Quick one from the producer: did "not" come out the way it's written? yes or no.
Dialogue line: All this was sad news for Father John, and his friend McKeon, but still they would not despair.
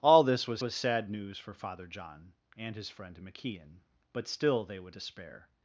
no